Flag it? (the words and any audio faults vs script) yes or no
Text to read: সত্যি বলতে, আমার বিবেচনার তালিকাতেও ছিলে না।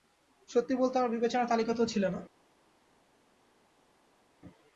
no